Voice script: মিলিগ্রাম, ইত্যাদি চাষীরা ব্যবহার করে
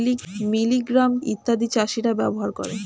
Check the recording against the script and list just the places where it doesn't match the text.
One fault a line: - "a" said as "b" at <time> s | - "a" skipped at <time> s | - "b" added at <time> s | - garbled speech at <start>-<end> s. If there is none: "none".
none